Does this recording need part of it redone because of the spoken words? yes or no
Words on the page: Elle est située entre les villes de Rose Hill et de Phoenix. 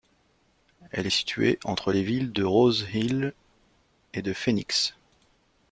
no